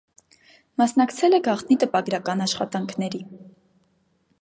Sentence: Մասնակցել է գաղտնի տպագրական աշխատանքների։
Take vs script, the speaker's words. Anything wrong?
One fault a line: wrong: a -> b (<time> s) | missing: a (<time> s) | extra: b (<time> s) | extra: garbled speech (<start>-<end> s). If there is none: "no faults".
no faults